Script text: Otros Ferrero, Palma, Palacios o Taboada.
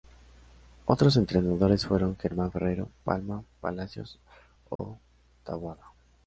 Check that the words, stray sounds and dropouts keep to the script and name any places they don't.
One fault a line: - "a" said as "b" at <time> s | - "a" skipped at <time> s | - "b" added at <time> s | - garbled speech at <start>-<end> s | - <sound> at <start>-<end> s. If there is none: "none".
- "entrenadores fueron Germán" added at 1.1 s
- dropout at 4.8-4.8 s